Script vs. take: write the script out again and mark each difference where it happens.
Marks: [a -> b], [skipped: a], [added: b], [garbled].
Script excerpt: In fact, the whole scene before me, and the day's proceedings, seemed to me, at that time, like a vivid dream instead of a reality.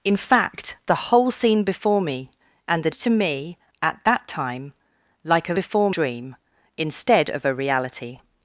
In fact, the whole scene before me, and the [skipped: day's proceedings, seemed] to me, at that time, like a [vivid -> before] dream instead of a reality.